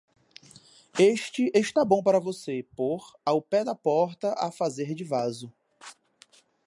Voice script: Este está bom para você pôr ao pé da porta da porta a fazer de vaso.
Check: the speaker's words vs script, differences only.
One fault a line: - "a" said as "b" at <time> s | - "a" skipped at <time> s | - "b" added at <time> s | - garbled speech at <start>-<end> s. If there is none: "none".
- "da porta" skipped at 4.3 s